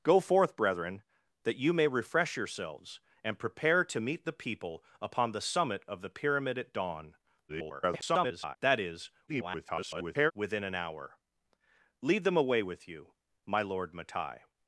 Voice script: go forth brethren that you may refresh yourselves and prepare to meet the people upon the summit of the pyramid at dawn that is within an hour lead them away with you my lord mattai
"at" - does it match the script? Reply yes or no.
yes